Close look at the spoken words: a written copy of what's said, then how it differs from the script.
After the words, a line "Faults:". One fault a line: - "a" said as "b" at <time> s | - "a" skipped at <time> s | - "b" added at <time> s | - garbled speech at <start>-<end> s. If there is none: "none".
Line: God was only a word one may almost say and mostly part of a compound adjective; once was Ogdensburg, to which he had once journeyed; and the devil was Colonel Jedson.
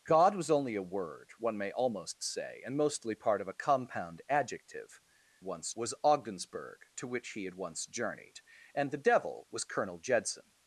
God was only a word one may almost say and mostly part of a compound adjective; once was Ogdensburg, to which he had once journeyed; and the devil was Colonel Jedson.
Faults:
none